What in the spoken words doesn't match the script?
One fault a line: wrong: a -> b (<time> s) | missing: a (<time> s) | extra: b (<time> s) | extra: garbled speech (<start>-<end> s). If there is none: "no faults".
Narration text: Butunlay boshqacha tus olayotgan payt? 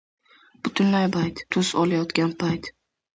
wrong: boshqacha -> payt (1.2 s)